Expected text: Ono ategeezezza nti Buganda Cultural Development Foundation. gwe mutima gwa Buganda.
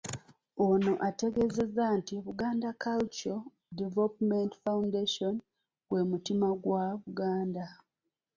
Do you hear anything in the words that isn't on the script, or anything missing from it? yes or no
no